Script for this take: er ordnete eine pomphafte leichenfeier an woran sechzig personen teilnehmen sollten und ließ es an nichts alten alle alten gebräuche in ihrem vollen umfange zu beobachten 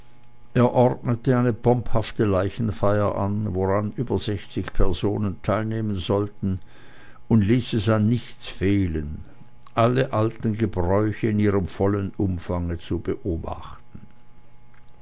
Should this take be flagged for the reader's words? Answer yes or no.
yes